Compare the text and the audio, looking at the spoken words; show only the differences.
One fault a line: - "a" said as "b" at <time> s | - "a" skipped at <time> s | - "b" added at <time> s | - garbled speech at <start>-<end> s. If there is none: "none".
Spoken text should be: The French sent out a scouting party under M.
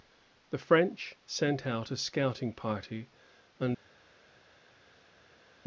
none